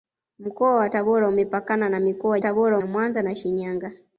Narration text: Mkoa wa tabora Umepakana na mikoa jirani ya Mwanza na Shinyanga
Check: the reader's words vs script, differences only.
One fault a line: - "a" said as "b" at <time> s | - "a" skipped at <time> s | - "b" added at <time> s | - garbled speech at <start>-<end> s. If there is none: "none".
- "jirani" said as "tabora" at 2.4 s